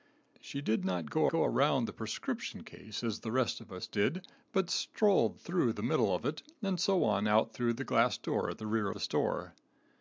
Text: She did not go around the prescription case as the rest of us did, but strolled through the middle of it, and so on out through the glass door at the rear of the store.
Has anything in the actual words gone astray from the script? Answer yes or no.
yes